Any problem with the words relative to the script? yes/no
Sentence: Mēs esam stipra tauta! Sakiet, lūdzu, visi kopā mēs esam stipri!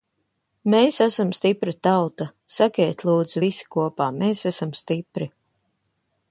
no